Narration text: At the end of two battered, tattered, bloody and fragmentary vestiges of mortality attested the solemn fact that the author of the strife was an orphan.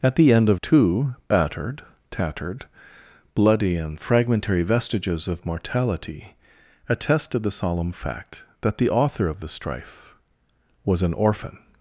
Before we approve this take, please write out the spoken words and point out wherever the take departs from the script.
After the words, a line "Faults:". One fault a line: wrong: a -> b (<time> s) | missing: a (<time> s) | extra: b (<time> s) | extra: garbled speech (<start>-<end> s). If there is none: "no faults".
At the end of two battered, tattered, bloody and fragmentary vestiges of mortality attested the solemn fact that the author of the strife was an orphan.
Faults:
no faults